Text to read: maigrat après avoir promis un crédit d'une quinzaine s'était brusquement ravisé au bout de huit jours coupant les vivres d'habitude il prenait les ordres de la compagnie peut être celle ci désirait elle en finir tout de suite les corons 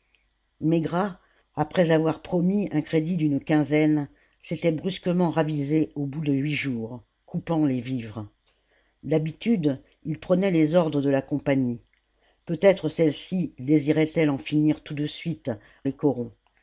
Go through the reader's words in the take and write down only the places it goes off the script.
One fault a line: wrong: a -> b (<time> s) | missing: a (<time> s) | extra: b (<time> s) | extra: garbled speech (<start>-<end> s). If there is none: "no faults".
no faults